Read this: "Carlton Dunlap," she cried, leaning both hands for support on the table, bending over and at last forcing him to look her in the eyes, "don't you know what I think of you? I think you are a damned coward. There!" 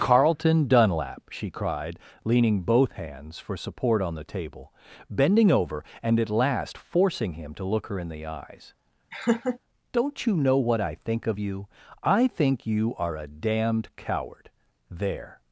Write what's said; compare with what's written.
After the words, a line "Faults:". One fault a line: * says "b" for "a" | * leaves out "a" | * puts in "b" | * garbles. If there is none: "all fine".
"Carlton Dunlap," she cried, leaning both hands for support on the table, bending over and at last forcing him to look her in the eyes, "don't you know what I think of you? I think you are a damned coward. There!"
Faults:
all fine